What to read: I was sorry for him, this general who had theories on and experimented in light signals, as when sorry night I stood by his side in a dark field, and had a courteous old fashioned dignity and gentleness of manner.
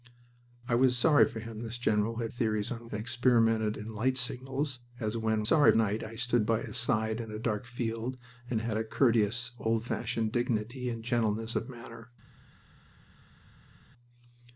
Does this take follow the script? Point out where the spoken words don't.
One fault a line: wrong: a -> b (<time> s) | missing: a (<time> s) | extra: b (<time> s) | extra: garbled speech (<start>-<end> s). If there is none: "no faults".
no faults